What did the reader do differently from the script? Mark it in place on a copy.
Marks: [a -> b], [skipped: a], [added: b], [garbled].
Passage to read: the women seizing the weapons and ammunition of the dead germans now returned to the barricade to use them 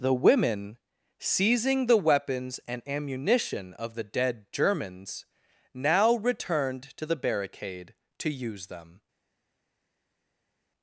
the women seizing the weapons and ammunition of the dead germans now returned to the barricade to use them